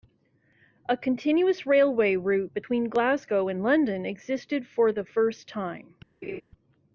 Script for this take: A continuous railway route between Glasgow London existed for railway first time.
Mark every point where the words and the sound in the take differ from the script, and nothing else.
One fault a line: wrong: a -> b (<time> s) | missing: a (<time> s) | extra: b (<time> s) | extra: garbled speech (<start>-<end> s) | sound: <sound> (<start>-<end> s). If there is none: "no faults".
extra: and (3.5 s)
wrong: railway -> the (4.9 s)
sound: laugh (6.2-6.4 s)